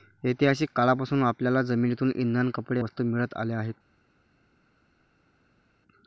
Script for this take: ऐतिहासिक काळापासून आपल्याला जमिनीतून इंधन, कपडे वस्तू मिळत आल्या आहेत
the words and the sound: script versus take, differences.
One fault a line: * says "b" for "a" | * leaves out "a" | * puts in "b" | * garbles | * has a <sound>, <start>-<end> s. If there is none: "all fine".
all fine